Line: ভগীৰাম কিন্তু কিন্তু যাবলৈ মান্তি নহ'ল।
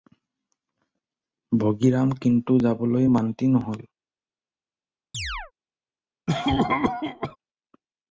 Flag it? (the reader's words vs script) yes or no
yes